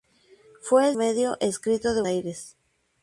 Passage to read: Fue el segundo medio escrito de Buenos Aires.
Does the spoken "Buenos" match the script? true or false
false